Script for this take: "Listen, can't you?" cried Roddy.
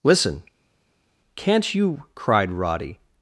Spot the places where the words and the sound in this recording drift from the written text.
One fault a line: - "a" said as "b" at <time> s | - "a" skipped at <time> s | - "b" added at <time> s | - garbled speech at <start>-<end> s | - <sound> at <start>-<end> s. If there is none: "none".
none